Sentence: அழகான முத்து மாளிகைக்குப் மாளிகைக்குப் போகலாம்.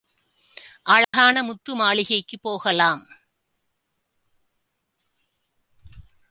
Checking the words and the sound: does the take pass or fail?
fail